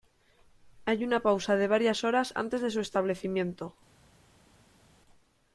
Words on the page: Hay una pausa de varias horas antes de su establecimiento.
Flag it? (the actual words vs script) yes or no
no